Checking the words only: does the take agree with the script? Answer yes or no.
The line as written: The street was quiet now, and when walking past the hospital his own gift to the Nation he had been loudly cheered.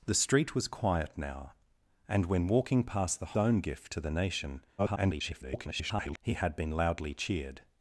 no